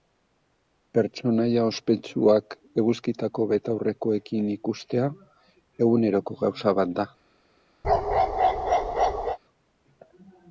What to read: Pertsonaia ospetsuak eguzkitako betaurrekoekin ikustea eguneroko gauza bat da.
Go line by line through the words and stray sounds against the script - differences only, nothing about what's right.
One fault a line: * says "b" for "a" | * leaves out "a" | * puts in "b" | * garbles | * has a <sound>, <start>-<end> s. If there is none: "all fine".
* has a bark, 7.8-9.4 s